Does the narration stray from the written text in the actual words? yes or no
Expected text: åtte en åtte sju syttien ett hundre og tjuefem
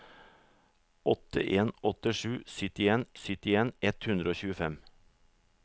yes